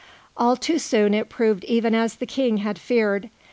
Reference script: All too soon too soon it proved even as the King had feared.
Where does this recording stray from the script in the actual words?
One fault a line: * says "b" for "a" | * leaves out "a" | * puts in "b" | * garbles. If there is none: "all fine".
* leaves out "too soon"